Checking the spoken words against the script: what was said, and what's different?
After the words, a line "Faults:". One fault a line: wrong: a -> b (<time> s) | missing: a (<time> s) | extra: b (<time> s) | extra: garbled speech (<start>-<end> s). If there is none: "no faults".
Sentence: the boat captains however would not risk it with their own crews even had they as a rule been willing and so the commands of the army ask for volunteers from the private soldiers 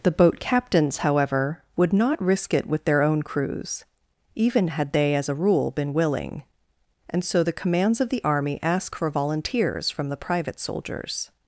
the boat captains however would not risk it with their own crews even had they as a rule been willing and so the commands of the army ask for volunteers from the private soldiers
Faults:
no faults